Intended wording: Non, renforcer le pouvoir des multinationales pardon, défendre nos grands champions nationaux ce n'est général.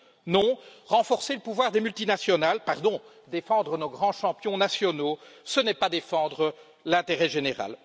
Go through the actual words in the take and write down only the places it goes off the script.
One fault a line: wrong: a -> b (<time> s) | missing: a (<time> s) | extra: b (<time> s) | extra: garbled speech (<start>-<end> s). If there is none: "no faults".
extra: pas défendre l'intérêt (5.7 s)